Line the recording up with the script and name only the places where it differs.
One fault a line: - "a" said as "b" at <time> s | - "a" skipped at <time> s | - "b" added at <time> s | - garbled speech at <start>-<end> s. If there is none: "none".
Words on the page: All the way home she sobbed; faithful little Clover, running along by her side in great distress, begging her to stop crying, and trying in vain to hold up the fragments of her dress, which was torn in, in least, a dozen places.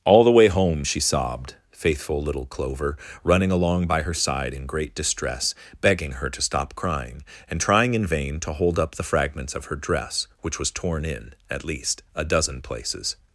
- "in" said as "at" at 11.5 s